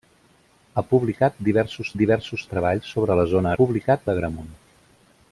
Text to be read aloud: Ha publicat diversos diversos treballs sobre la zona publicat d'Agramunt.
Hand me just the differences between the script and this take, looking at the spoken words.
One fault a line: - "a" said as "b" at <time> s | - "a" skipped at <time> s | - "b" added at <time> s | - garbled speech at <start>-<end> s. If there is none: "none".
none